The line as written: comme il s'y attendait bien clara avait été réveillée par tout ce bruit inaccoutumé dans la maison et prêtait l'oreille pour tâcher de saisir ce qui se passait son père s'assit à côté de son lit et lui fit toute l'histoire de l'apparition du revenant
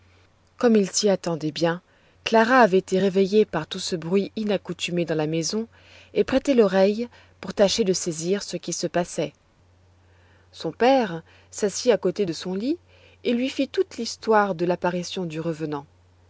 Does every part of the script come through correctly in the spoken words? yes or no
yes